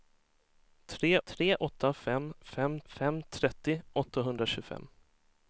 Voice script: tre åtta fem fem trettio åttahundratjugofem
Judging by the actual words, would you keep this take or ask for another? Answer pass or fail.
fail